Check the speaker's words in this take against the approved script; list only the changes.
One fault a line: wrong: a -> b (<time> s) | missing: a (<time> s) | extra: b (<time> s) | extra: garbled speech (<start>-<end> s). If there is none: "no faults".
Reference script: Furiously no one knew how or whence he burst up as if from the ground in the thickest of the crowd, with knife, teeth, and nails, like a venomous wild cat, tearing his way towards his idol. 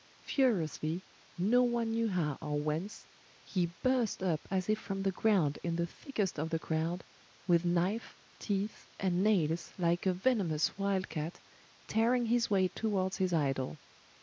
no faults